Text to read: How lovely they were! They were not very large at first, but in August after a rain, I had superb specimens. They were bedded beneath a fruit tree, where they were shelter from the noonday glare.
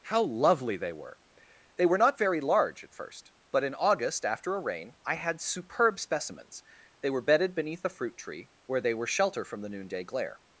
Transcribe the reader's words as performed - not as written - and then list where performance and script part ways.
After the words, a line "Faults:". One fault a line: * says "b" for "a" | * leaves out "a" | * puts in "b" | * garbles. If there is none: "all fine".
How lovely they were! They were not very large at first, but in August after a rain, I had superb specimens. They were bedded beneath a fruit tree, where they were shelter from the noonday glare.
Faults:
all fine